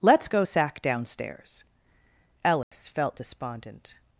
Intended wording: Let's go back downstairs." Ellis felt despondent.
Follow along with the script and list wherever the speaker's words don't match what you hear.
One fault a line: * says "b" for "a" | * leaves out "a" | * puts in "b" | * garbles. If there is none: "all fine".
* says "sack" for "back"